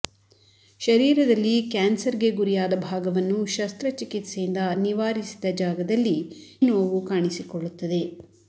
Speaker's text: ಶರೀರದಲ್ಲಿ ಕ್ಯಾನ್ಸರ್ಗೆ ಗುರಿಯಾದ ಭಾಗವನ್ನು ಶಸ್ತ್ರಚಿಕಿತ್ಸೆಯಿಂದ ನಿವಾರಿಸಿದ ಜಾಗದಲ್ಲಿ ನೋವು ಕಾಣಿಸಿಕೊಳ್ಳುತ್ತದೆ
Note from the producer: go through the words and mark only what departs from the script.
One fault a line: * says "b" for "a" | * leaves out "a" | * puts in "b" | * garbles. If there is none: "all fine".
all fine